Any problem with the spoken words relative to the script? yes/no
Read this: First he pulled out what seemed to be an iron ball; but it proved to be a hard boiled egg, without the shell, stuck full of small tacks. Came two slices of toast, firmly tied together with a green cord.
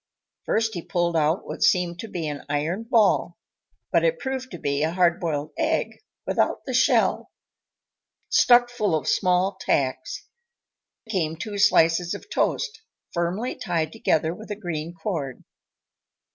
no